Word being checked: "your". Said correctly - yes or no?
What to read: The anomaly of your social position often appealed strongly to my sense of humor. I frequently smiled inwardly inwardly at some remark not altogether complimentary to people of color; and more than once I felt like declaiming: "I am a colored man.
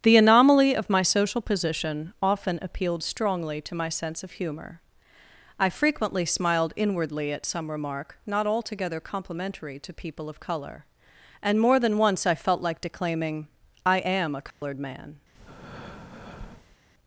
no